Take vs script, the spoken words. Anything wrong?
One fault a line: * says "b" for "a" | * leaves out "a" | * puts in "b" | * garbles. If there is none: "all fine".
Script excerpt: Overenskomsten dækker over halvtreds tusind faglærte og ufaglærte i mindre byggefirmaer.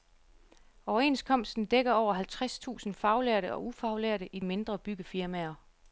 all fine